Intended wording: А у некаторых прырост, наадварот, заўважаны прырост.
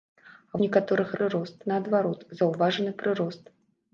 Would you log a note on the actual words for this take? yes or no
no